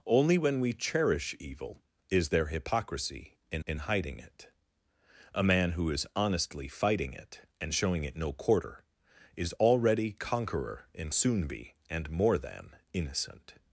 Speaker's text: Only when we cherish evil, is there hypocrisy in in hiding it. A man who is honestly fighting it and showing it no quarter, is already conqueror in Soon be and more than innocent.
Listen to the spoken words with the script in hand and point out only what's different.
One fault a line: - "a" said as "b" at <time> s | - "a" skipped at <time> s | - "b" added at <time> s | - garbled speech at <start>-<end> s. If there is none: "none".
none